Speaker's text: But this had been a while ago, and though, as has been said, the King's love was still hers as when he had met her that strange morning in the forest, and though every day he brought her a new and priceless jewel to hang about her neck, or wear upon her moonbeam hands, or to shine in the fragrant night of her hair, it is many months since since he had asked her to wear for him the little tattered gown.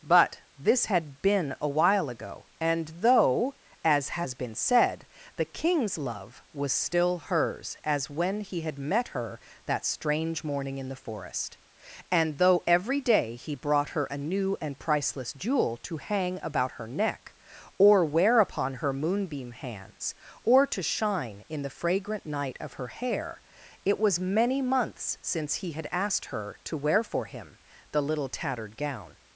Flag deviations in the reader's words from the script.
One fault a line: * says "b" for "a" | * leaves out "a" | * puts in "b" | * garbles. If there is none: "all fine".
* says "was" for "is"
* leaves out "since"